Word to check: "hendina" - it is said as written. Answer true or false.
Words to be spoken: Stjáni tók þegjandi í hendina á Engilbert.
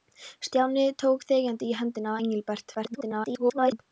true